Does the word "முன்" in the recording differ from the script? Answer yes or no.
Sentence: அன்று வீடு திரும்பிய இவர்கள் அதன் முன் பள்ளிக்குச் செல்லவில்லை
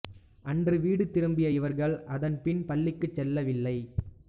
yes